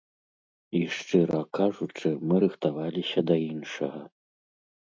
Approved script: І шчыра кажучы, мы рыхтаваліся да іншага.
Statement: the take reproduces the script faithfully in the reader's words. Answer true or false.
true